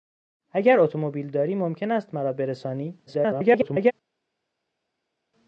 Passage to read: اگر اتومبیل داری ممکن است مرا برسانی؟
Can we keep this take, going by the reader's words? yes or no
no